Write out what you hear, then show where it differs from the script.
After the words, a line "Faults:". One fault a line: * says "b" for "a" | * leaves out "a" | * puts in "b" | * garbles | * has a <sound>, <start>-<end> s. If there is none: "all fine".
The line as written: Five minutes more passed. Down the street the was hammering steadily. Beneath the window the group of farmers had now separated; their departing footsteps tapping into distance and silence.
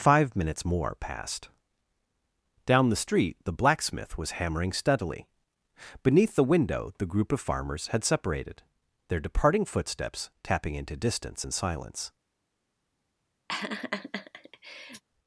Five minutes more passed. Down the street the blacksmith was hammering steadily. Beneath the window the group of farmers had separated; their departing footsteps tapping into distance and silence.
Faults:
* puts in "blacksmith"
* leaves out "now"
* has a laugh, 13.5-15.0 s